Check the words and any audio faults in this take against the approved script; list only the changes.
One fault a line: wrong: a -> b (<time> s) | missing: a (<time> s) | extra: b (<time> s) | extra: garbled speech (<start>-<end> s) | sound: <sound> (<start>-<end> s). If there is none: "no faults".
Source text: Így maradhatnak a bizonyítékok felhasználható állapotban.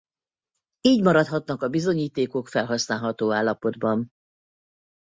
no faults